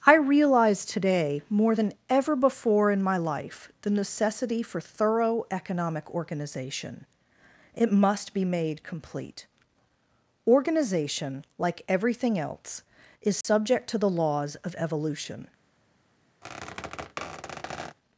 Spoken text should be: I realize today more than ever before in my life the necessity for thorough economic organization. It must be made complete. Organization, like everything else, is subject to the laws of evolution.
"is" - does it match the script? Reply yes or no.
yes